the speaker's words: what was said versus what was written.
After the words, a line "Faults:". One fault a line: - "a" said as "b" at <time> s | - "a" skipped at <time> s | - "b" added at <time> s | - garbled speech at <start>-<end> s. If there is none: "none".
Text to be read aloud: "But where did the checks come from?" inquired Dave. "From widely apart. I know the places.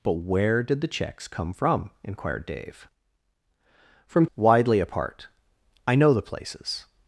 "But where did the checks come from?" inquired Dave. "From widely apart. I know the places.
Faults:
none